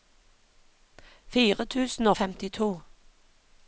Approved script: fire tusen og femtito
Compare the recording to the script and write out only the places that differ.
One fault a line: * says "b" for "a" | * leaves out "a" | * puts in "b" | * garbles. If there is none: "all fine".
all fine